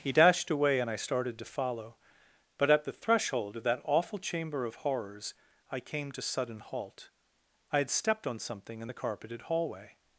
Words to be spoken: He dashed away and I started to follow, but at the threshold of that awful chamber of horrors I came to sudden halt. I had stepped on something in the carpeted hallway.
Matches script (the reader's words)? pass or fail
pass